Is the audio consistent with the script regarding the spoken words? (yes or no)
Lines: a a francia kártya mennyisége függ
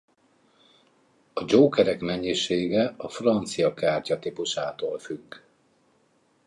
no